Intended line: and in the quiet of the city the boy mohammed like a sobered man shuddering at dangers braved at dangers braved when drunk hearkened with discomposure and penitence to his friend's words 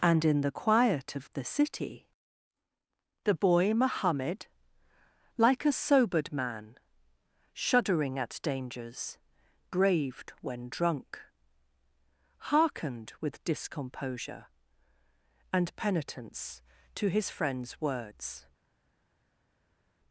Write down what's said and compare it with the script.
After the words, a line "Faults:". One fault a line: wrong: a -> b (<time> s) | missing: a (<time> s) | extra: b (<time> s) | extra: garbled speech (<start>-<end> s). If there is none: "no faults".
and in the quiet of the city the boy mohammed like a sobered man shuddering at dangers braved when drunk hearkened with discomposure and penitence to his friend's words
Faults:
missing: at dangers braved (10.3 s)